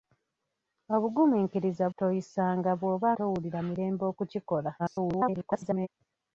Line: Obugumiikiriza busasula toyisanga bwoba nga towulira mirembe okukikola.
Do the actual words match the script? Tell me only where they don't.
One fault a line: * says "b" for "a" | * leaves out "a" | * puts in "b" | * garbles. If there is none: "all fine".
* leaves out "busasula"
* leaves out "nga"
* garbles